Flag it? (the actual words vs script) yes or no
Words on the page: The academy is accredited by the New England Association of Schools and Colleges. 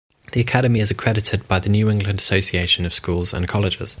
no